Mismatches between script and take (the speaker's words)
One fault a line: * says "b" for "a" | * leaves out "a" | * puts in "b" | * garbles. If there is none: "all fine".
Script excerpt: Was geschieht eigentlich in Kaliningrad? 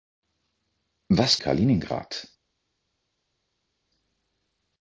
* leaves out "geschieht eigentlich in"